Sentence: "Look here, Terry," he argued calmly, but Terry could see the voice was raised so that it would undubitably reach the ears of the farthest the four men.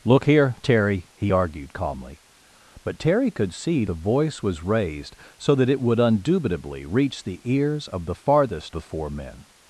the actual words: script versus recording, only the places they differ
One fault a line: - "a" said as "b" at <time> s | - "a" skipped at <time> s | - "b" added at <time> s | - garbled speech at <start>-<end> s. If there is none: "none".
none